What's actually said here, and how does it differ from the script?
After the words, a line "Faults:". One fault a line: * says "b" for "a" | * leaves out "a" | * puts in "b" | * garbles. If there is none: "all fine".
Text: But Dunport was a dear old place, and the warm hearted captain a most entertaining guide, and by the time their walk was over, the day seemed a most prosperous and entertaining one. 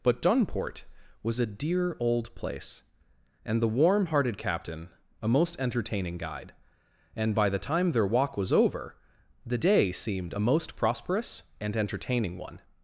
But Dunport was a dear old place, and the warm hearted captain a most entertaining guide, and by the time their walk was over, the day seemed a most prosperous and entertaining one.
Faults:
all fine